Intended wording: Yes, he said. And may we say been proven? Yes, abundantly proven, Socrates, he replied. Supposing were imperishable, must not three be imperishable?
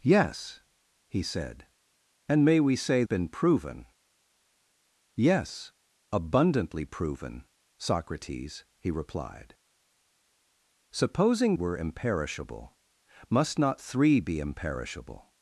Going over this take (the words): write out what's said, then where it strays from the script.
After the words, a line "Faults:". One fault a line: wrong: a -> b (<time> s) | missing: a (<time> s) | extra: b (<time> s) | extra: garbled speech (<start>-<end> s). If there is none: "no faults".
Yes, he said. And may we say been proven? Yes, abundantly proven, Socrates, he replied. Supposing were imperishable, must not three be imperishable?
Faults:
no faults